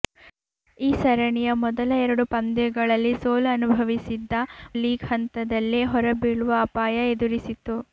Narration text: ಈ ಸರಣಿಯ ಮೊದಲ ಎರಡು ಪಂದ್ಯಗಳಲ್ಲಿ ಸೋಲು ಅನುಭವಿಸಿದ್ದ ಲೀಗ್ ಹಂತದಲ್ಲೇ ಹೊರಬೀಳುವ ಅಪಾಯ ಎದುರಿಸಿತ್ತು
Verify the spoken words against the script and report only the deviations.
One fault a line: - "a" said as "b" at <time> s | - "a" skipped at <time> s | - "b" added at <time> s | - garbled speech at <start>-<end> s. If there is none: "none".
none